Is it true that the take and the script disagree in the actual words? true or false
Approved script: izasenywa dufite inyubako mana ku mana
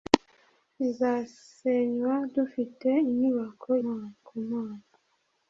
false